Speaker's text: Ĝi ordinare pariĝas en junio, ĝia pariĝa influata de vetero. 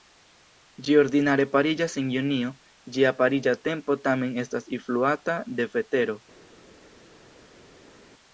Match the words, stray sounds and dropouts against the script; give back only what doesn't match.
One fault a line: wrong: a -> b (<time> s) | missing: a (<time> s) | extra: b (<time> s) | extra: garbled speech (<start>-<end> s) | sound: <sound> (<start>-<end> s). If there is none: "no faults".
extra: tempo tamen estas (3.7 s)